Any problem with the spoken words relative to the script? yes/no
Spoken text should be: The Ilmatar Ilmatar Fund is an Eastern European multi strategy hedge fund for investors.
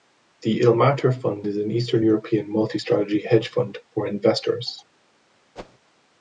yes